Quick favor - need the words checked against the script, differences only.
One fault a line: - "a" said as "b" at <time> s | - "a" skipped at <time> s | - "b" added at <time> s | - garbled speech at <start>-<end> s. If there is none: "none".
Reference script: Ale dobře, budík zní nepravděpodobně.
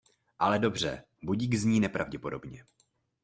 none